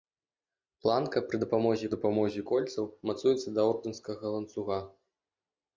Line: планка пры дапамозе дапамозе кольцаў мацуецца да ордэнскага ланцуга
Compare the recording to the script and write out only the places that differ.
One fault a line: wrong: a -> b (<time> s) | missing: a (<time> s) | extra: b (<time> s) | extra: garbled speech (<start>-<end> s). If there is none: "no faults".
no faults